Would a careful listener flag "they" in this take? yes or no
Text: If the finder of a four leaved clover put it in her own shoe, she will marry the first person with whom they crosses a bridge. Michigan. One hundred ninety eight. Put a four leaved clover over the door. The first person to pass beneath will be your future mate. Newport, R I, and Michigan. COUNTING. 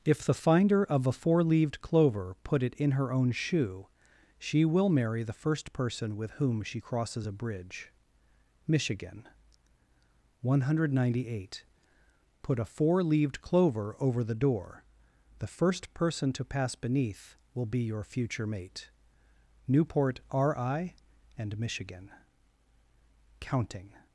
yes